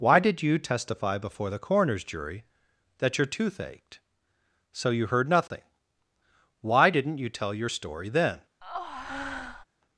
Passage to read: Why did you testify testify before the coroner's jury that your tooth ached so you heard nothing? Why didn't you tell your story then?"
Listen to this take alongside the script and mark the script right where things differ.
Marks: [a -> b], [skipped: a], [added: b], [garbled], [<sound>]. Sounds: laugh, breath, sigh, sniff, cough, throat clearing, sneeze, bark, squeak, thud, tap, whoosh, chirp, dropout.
Why did you testify [skipped: testify] before the coroner's jury that your tooth ached so you heard nothing? Why didn't you tell your story then?" [breath]